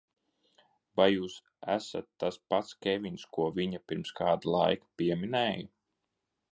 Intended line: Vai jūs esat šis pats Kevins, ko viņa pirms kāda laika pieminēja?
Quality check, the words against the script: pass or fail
fail